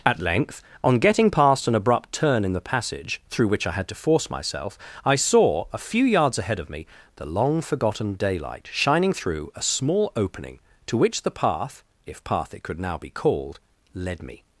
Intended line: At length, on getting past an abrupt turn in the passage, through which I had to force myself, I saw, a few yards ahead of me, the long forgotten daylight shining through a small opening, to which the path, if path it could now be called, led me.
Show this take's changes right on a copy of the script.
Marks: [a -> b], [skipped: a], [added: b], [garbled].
At length, on getting past an abrupt turn in the passage, through which I had to force myself, I saw, a few yards ahead of me, the long forgotten daylight shining through a small opening, to which the path, if path it could now be called, led me.